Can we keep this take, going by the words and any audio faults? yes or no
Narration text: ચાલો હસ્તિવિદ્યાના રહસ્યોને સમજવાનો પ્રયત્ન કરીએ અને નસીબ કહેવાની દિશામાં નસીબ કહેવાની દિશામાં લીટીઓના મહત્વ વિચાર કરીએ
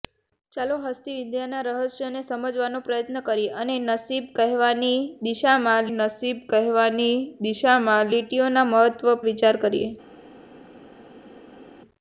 yes